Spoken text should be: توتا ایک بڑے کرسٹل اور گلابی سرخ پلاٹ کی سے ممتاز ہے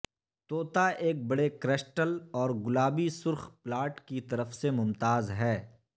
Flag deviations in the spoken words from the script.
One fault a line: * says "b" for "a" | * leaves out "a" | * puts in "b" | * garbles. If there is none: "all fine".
* puts in "طرف"